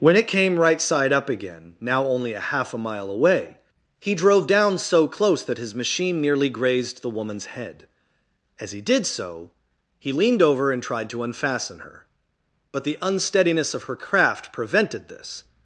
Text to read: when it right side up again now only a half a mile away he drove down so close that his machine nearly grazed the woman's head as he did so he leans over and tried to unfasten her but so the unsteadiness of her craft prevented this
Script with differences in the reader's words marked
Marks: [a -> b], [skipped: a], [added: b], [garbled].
when it [added: came] right side up again now only a half a mile away he drove down so close that his machine nearly grazed the woman's head as he did so he [leans -> leaned] over and tried to unfasten her but [skipped: so] the unsteadiness of her craft prevented this